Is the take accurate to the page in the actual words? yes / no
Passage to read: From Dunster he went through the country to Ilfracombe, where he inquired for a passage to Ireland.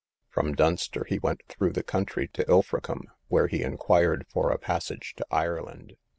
yes